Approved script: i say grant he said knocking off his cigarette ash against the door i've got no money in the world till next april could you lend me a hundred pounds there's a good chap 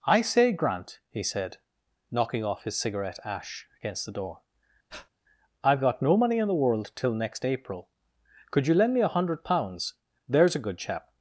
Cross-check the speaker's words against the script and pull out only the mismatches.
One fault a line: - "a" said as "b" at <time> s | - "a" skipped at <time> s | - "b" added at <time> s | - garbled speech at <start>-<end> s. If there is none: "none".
none